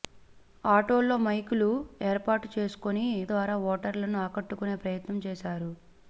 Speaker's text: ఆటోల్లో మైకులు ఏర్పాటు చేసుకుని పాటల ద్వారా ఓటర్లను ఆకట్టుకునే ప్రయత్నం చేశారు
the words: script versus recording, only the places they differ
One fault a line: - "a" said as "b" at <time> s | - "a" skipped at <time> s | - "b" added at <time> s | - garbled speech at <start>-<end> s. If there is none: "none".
- "పాటల" skipped at 3.0 s